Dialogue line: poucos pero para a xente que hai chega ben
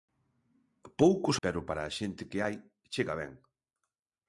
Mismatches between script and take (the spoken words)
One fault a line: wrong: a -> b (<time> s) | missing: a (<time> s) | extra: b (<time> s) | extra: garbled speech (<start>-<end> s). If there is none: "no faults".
no faults